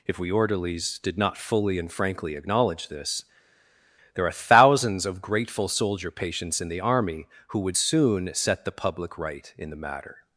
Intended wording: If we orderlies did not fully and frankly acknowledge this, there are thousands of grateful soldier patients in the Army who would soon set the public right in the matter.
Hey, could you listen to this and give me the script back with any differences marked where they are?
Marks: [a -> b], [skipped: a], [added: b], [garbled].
If we orderlies did not fully and frankly acknowledge this, there are thousands of grateful soldier patients in the Army who would soon set the public right in the matter.